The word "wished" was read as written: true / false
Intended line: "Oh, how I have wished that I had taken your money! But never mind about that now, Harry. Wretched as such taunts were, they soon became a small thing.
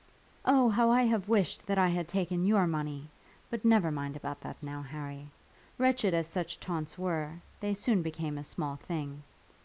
true